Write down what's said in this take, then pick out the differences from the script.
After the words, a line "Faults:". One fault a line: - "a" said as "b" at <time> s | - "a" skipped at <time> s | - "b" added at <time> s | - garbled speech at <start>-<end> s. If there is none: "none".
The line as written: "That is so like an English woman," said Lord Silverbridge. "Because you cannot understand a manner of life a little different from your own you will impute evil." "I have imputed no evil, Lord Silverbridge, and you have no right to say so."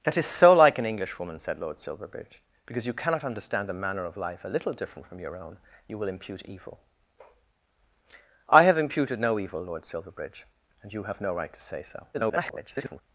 "That is so like an English woman," said Lord Silverbridge. "Because you cannot understand a manner of life a little different from your own you will impute evil." "I have imputed no evil, Lord Silverbridge, and you have no right to say so." [garbled]
Faults:
- garbled speech at 12.1-13.0 s